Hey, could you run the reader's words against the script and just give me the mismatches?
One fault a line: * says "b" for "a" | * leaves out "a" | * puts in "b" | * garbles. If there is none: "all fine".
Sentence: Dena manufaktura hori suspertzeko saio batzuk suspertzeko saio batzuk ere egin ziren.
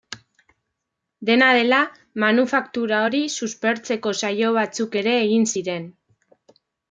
* puts in "dela"
* leaves out "suspertzeko saio batzuk"